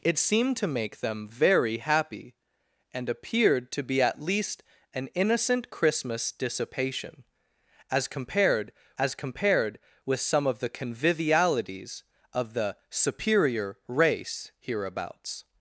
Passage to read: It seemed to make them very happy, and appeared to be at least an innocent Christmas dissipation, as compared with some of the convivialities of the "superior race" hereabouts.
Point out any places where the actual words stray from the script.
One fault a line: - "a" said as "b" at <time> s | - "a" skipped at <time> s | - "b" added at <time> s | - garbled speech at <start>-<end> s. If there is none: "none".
- "as compared" added at 9.0 s